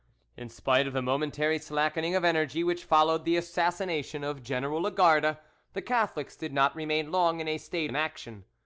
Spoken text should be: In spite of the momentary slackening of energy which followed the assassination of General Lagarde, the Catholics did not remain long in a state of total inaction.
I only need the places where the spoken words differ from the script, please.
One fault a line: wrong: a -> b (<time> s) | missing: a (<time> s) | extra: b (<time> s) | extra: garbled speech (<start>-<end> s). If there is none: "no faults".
missing: of total (7.9 s)